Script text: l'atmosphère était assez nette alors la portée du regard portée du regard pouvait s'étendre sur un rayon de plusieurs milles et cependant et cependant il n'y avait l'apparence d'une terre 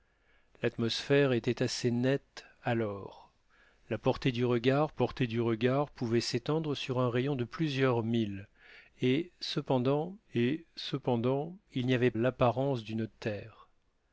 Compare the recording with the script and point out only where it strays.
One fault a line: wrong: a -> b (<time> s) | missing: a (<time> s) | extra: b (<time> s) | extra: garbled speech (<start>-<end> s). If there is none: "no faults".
no faults